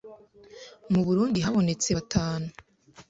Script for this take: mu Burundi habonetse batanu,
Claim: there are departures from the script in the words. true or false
false